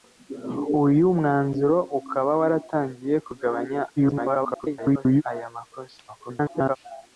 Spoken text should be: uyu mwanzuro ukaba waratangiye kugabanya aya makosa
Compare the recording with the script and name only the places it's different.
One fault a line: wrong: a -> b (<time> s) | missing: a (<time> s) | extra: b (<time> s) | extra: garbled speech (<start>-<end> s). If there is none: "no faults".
extra: garbled speech (4.0-5.2 s)
extra: garbled speech (6.1-6.8 s)